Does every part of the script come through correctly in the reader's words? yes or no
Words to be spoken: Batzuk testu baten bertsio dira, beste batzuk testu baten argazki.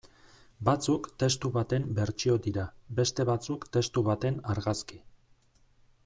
yes